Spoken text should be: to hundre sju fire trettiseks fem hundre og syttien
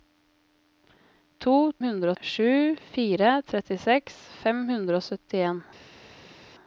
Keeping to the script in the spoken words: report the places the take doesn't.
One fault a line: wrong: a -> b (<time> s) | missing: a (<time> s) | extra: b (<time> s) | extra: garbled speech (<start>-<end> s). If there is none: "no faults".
no faults